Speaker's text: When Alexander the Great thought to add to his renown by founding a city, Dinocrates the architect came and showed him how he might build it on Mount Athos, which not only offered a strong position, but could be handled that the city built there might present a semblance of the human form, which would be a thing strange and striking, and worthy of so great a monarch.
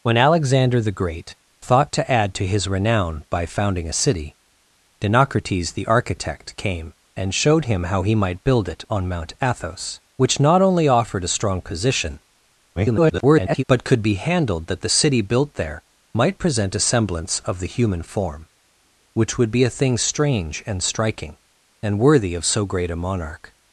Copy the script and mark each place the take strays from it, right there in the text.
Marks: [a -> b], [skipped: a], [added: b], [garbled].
When Alexander the Great thought to add to his renown by founding a city, Dinocrates the architect came and showed him how he might build it on Mount Athos, which not only offered a strong position, [garbled] but could be handled that the city built there might present a semblance of the human form, which would be a thing strange and striking, and worthy of so great a monarch.